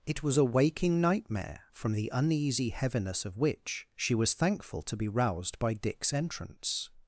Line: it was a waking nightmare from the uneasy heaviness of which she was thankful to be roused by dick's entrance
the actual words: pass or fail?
pass